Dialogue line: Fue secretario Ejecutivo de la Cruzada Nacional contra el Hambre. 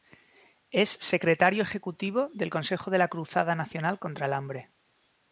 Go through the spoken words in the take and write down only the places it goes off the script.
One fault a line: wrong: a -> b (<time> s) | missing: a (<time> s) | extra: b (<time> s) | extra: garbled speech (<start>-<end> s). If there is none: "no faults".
wrong: Fue -> Es (0.7 s)
extra: del Consejo (2.3 s)